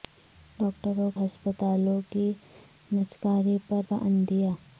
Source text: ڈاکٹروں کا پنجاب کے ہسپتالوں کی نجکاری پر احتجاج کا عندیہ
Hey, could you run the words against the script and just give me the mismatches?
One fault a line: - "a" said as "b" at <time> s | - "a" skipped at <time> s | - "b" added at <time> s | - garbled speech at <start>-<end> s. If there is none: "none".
- "کا پنجاب کے" skipped at 1.1 s
- "احتجاج" skipped at 3.9 s